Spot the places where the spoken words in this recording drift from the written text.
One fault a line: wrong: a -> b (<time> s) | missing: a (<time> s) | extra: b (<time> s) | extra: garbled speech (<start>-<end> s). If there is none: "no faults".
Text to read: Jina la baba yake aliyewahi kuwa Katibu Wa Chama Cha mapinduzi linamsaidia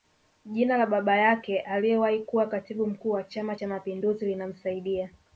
extra: Mkuu (2.9 s)